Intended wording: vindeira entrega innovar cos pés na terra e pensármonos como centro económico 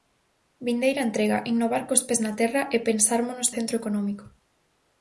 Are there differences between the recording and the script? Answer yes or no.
yes